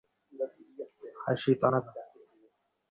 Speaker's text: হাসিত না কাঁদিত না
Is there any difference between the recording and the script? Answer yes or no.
yes